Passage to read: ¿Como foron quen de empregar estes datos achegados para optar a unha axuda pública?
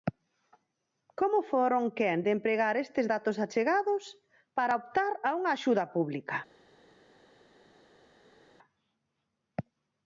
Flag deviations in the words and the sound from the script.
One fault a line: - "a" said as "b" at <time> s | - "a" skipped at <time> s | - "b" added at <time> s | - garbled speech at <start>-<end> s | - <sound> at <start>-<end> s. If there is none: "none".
none